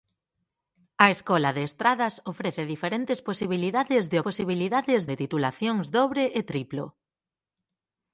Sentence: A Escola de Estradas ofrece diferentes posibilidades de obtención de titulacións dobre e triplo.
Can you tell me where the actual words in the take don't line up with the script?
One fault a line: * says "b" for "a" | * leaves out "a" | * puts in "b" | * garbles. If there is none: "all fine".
* says "posibilidades" for "obtención"